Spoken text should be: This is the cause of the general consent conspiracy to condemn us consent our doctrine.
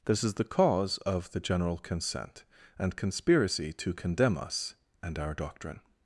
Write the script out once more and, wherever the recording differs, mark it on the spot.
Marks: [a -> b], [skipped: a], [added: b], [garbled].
This is the cause of the general consent [added: and] conspiracy to condemn us [consent -> and] our doctrine.